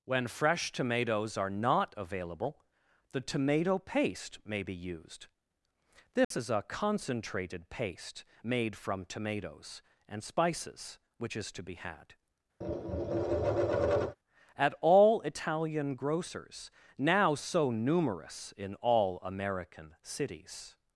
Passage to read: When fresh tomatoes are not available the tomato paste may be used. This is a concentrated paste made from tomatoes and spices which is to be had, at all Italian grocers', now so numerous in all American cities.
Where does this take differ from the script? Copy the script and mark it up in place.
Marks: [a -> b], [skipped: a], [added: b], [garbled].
When fresh tomatoes are not available the tomato paste may be used. This is a concentrated paste made from tomatoes and spices which is to be had, at all Italian grocers', now so numerous in all American cities.